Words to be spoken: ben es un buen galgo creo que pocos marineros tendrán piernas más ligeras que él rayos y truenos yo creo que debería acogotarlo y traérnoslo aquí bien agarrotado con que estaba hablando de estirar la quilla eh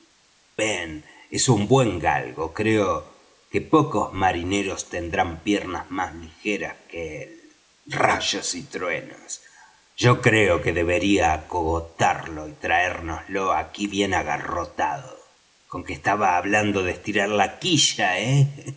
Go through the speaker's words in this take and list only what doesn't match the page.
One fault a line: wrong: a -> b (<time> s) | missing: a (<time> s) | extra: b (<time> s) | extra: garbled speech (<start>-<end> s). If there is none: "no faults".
no faults